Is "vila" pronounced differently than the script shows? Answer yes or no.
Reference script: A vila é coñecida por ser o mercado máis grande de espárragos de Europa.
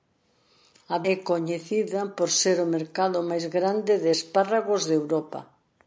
yes